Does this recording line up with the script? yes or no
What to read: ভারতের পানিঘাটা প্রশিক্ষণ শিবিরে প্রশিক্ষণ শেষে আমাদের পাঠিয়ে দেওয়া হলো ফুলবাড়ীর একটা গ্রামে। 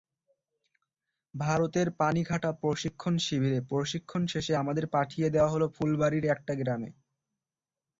yes